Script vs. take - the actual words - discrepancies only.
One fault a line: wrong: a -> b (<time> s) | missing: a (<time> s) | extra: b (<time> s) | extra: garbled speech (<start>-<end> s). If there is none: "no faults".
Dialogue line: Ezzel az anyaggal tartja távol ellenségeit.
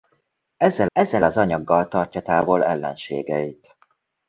extra: ezzel (0.9 s)